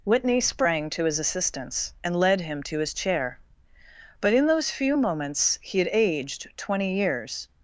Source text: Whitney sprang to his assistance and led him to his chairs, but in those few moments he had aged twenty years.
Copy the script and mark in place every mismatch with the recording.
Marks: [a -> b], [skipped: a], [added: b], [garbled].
Whitney sprang to his assistance and led him to his [chairs, -> chair] but in those few moments he had aged twenty years.